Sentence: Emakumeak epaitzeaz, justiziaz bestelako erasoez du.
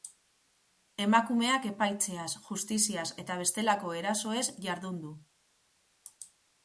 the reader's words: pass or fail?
fail